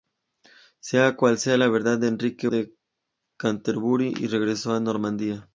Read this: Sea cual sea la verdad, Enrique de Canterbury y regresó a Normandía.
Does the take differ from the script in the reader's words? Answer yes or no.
no